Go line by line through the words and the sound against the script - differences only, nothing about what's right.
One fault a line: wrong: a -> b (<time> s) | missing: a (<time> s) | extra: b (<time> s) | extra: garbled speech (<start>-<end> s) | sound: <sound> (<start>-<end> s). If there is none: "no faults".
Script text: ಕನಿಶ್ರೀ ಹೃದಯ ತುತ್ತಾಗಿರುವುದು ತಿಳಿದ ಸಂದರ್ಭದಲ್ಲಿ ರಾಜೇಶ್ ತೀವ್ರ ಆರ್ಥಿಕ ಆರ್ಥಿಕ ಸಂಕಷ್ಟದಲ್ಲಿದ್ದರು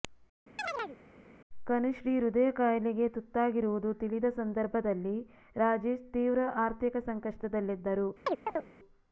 sound: chirp (0.6-1.0 s)
extra: ಕಾಯಿಲೆಗೆ (2.5 s)
missing: ಆರ್ಥಿಕ (7.0 s)
sound: chirp (8.3-8.7 s)